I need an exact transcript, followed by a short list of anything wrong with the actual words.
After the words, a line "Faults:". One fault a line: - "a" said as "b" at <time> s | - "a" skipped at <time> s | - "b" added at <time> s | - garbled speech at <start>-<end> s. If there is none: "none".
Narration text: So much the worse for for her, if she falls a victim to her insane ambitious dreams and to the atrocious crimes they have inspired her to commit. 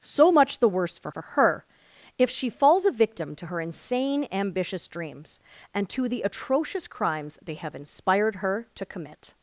So much the worse for for her, if she falls a victim to her insane ambitious dreams and to the atrocious crimes they have inspired her to commit.
Faults:
none